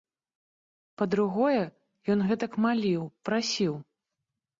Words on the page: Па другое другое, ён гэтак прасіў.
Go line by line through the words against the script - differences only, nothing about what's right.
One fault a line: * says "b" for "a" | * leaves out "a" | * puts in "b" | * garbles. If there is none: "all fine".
* leaves out "другое"
* puts in "маліў"